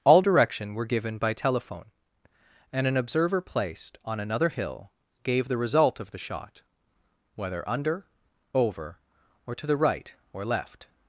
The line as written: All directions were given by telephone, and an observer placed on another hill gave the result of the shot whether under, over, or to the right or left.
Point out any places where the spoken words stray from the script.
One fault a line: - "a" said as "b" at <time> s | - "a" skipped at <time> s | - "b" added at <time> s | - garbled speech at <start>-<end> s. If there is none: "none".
- "directions" said as "direction" at 0.2 s